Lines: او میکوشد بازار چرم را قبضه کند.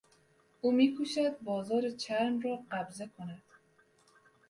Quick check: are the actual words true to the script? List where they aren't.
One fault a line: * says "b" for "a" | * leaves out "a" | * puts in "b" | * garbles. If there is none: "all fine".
all fine